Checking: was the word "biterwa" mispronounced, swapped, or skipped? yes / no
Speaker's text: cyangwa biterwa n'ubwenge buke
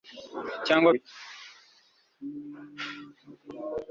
yes